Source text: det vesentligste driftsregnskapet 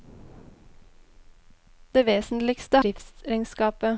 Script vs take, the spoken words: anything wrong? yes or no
no